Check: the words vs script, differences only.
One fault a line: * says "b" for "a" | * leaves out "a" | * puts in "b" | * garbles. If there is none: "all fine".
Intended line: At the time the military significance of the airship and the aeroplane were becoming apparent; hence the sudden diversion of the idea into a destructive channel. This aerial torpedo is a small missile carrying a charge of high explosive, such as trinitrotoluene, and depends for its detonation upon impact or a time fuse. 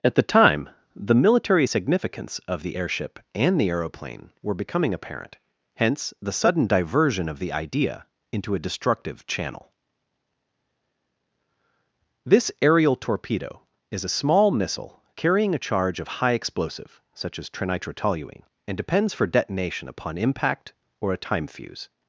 * leaves out "its"